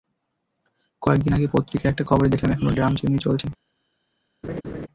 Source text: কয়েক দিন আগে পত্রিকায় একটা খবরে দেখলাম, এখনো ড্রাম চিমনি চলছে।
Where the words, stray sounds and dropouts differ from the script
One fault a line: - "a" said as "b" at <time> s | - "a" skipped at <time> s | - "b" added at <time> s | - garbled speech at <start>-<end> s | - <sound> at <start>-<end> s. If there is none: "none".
- laugh at 4.4-4.9 s